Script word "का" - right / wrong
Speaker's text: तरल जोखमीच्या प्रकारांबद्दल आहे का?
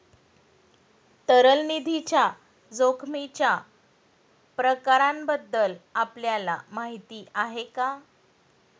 right